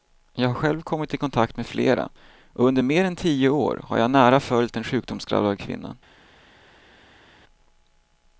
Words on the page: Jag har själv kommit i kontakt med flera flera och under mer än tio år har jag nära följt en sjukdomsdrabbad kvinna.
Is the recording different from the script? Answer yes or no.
yes